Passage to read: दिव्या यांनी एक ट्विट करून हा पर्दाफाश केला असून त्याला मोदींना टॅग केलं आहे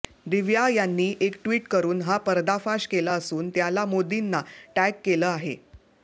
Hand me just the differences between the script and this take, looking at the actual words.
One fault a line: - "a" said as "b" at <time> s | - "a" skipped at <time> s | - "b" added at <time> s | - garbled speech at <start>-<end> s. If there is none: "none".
none